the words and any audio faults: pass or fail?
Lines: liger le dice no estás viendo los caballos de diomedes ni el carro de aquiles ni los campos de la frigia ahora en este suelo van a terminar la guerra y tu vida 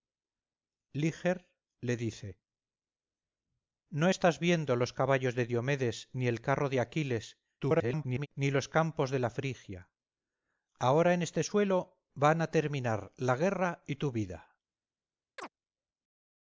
fail